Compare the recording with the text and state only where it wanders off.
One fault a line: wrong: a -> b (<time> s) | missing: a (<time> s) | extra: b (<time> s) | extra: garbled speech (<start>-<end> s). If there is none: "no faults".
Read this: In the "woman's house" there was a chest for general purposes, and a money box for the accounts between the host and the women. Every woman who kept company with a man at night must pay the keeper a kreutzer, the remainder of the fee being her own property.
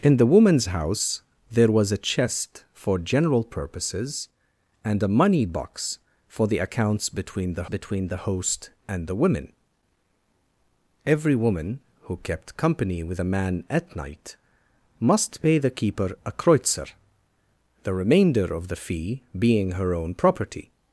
extra: between the (7.6 s)